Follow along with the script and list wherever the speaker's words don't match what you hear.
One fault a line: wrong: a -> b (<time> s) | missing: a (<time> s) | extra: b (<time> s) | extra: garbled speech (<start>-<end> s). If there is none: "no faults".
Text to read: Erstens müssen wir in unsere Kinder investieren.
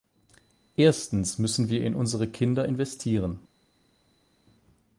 no faults